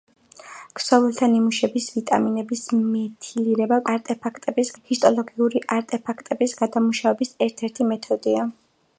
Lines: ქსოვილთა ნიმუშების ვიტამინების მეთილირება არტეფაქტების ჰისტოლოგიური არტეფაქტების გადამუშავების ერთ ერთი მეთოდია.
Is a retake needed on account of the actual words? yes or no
no